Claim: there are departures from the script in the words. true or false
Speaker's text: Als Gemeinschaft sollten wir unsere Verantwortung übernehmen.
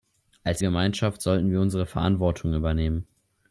false